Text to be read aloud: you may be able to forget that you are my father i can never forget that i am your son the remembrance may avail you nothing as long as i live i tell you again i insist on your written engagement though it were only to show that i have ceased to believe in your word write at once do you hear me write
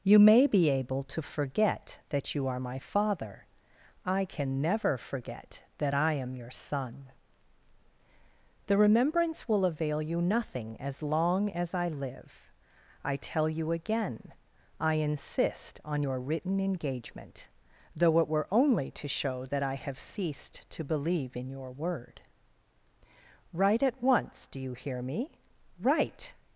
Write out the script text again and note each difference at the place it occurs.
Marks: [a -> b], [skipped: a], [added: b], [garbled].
you may be able to forget that you are my father i can never forget that i am your son the remembrance [may -> will] avail you nothing as long as i live i tell you again i insist on your written engagement though it were only to show that i have ceased to believe in your word write at once do you hear me write